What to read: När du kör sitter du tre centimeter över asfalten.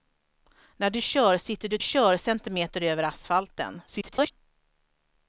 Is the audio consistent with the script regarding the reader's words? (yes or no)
no